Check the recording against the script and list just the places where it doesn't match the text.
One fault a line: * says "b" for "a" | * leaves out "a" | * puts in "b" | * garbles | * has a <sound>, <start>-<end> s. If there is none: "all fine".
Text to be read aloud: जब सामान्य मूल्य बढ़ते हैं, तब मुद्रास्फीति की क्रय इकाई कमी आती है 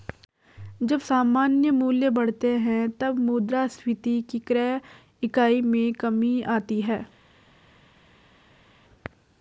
* puts in "में"